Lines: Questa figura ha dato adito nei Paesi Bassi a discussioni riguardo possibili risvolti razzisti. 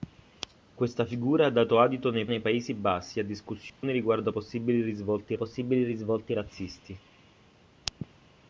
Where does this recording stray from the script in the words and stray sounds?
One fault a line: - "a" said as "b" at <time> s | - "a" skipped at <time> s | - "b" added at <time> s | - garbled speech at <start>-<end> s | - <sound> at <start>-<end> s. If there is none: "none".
- "nei" added at 2.2 s
- dropout at 3.7-3.8 s
- "possibili risvolti" added at 5.3 s